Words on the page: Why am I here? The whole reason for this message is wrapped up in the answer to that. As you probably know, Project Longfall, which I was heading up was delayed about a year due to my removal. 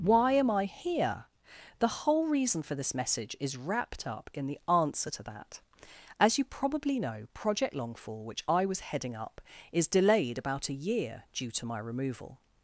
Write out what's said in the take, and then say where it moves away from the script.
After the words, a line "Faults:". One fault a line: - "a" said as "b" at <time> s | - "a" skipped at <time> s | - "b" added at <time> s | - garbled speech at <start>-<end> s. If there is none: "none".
Why am I here? The whole reason for this message is wrapped up in the answer to that. As you probably know, Project Longfall, which I was heading up is delayed about a year due to my removal.
Faults:
- "was" said as "is" at 9.7 s